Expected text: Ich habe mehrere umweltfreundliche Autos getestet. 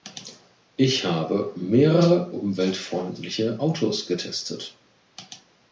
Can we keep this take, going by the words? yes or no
yes